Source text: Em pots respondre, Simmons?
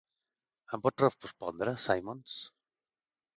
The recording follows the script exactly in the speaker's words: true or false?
true